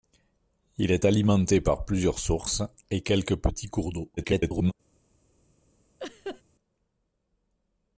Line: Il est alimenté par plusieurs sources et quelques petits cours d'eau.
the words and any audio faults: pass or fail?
fail